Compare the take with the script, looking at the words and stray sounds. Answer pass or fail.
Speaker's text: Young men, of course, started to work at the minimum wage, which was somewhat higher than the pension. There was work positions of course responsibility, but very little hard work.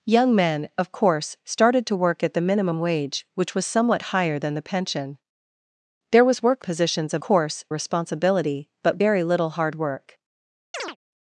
fail